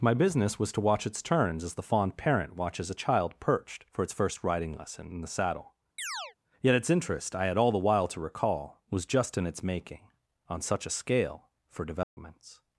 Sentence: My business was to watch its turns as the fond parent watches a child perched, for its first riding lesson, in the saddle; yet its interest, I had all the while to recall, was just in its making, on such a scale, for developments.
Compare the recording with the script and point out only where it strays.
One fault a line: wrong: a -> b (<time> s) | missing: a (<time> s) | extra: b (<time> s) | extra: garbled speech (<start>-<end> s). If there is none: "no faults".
no faults